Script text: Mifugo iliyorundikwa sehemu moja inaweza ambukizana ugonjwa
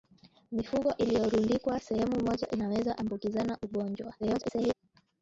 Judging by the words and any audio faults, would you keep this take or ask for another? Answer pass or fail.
fail